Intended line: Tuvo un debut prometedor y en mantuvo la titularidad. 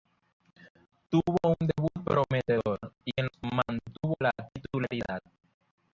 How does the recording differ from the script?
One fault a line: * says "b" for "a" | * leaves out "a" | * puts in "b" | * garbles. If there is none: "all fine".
all fine